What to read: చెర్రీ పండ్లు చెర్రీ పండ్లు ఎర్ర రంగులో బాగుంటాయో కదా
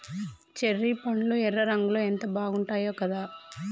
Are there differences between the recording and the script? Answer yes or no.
yes